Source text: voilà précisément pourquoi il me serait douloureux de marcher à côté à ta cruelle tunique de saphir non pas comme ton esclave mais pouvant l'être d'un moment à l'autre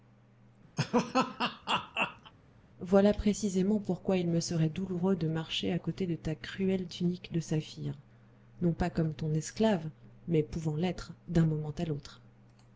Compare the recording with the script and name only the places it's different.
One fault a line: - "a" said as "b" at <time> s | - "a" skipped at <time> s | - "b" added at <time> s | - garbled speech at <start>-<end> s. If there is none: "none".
- "à" said as "de" at 6.1 s